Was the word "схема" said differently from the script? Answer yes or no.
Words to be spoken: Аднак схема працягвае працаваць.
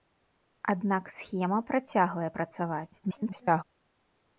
no